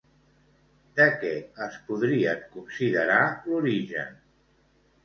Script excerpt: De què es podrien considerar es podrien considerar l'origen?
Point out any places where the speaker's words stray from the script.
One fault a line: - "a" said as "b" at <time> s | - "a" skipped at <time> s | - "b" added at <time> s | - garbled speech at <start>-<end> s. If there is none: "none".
- "es podrien considerar" skipped at 3.2 s